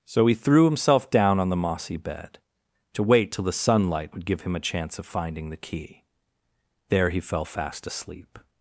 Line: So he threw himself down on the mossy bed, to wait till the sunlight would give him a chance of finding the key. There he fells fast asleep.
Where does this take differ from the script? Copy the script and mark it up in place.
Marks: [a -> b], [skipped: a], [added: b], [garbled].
So he threw himself down on the mossy bed, to wait till the sunlight would give him a chance of finding the key. There he [fells -> fell] fast asleep.